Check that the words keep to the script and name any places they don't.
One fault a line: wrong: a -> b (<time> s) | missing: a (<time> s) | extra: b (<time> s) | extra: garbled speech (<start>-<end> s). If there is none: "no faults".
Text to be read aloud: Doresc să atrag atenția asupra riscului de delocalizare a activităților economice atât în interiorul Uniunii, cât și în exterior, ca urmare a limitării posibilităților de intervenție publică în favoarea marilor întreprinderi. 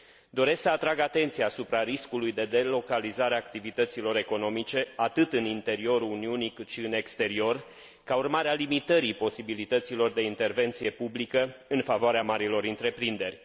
no faults